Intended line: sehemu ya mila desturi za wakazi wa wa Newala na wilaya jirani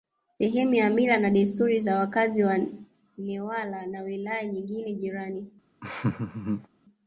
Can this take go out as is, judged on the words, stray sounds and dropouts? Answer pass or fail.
fail